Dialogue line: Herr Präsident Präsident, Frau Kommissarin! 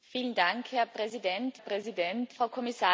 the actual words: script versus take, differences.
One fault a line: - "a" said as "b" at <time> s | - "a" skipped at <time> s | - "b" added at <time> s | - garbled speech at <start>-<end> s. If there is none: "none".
none